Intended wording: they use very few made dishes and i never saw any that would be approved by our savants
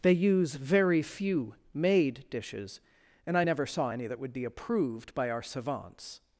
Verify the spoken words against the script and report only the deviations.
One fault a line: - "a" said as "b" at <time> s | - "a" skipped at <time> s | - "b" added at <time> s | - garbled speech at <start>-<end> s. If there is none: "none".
none